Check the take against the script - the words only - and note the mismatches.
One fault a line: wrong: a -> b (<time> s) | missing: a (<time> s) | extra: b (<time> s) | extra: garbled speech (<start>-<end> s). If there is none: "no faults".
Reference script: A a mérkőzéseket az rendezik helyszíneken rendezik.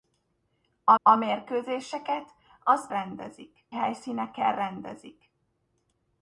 no faults